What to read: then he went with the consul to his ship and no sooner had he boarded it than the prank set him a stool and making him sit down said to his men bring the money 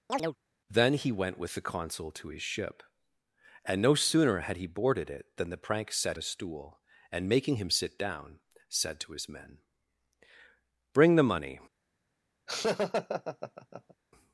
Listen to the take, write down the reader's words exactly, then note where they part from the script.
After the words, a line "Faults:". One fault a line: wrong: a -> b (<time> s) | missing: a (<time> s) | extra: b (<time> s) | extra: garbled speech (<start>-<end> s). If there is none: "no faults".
then he went with the consul to his ship and no sooner had he boarded it than the prank set a stool and making him sit down said to his men bring the money
Faults:
missing: him (6.2 s)